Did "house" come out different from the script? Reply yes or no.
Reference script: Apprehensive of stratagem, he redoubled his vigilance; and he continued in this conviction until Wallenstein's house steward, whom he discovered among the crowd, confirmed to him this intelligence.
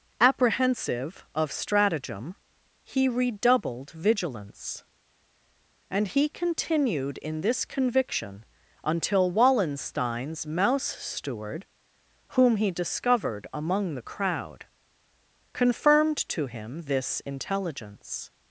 yes